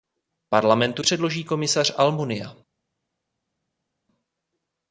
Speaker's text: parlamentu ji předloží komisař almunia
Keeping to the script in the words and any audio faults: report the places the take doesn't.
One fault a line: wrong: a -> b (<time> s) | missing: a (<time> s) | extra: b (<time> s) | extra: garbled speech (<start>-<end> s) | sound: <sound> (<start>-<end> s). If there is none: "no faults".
missing: ji (1.0 s)